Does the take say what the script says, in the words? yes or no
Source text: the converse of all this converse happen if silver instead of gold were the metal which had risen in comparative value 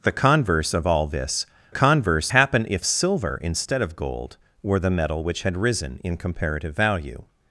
yes